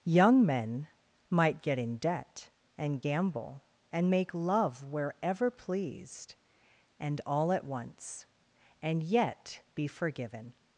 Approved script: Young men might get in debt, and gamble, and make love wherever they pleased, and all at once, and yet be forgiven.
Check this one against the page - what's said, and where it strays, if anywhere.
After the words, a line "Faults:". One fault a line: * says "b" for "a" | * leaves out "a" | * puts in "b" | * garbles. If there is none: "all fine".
Young men might get in debt, and gamble, and make love wherever pleased, and all at once, and yet be forgiven.
Faults:
* leaves out "they"